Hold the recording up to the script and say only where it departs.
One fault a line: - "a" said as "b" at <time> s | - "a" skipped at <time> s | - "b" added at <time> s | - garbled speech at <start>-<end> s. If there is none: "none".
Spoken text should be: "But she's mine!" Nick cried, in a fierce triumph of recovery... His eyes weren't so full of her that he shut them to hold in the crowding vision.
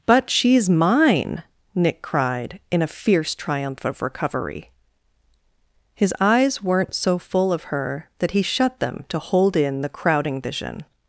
none